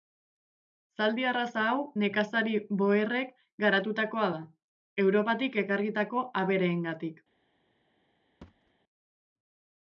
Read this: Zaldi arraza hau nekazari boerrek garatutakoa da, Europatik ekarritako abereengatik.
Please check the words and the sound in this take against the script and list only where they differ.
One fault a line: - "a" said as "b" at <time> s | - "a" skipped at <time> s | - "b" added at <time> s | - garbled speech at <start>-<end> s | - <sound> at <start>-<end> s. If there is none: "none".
- thud at 8.4-8.7 s